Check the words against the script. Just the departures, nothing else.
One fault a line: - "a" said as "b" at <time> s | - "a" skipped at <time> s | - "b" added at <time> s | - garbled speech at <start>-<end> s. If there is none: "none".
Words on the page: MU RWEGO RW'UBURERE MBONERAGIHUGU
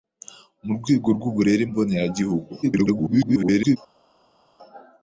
- garbled speech at 2.6-3.8 s